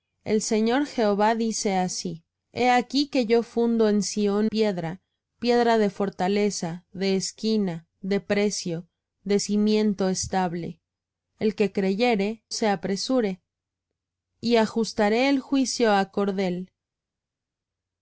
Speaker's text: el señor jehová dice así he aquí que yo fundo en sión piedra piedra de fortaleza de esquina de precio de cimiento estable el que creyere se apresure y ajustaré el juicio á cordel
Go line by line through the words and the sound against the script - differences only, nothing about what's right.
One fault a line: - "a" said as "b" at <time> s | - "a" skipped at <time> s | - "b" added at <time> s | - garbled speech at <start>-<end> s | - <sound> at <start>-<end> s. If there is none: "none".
none